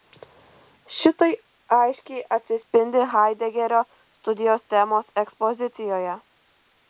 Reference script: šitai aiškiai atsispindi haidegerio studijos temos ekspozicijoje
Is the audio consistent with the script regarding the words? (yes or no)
yes